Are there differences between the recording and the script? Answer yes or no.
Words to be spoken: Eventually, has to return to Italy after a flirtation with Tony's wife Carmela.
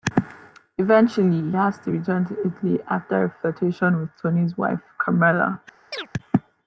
no